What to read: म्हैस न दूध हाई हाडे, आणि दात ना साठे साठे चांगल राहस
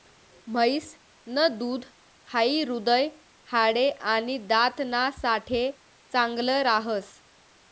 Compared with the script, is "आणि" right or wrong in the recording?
right